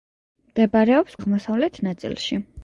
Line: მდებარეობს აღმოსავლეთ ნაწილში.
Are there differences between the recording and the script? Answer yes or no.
no